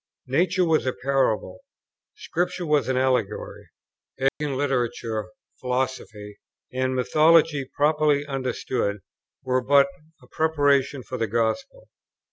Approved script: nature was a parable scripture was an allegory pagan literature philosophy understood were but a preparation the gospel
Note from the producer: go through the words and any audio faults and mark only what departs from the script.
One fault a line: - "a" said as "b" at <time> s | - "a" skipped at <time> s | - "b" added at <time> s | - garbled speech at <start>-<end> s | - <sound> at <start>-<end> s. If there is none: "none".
- dropout at 4.3-4.4 s
- "and mythology properly" added at 6.7 s
- "for" added at 11.0 s